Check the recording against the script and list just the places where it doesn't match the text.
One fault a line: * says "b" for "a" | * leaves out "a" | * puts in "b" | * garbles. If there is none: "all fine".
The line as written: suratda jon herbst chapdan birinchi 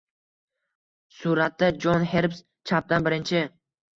all fine